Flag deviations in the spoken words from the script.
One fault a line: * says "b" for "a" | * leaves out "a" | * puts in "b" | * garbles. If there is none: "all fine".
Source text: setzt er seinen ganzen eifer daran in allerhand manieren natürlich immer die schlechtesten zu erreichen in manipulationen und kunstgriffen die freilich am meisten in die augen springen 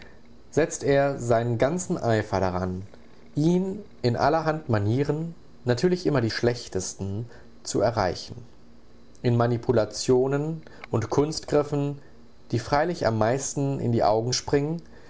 * puts in "ihn"